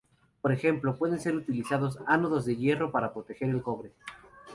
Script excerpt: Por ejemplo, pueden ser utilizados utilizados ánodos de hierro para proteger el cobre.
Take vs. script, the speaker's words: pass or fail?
fail